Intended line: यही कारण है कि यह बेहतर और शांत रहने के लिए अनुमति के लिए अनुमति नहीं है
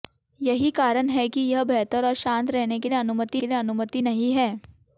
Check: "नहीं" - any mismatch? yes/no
no